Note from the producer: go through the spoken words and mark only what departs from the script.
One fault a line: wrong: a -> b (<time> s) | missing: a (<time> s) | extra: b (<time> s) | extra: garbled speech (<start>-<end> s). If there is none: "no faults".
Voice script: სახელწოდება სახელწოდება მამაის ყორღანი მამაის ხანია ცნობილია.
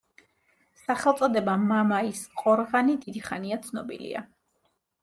missing: სახელწოდება (1.6 s)
wrong: მამაის -> დიდი (3.0 s)